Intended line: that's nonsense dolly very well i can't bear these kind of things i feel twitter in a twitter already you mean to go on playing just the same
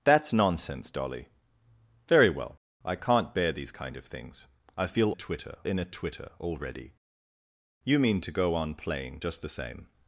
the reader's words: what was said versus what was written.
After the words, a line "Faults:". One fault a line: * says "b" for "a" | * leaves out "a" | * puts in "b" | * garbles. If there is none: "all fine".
that's nonsense dolly very well i can't bear these kind of things i feel twitter in a twitter already you mean to go on playing just the same
Faults:
all fine